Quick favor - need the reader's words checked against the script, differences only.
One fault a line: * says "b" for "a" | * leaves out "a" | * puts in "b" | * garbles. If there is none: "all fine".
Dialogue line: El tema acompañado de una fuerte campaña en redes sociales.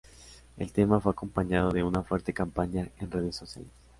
* puts in "fue"